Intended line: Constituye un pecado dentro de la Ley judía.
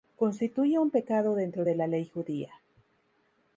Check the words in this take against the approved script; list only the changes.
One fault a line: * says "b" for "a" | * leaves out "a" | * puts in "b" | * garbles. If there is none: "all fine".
all fine